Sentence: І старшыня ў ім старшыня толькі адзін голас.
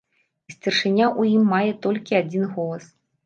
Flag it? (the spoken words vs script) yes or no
yes